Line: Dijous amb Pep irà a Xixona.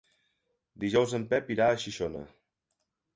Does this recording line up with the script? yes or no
no